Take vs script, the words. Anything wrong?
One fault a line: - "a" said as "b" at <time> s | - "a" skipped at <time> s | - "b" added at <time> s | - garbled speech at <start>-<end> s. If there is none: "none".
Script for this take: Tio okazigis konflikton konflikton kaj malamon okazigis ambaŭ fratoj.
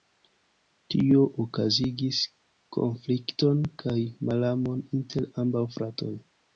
- "konflikton" skipped at 3.7 s
- "okazigis" said as "inter" at 5.0 s